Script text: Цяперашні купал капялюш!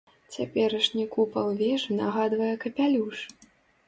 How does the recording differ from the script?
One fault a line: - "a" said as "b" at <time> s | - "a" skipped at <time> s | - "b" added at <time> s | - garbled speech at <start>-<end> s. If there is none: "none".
- "вежы нагадвае" added at 1.6 s